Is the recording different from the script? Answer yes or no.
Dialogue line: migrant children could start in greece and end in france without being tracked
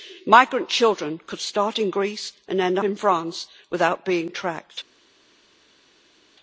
no